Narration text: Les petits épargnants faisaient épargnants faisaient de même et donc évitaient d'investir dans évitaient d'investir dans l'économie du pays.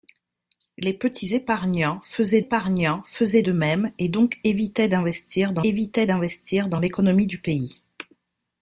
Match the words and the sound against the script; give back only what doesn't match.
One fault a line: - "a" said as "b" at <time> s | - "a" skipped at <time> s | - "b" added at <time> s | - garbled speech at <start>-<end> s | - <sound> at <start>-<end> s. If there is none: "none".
none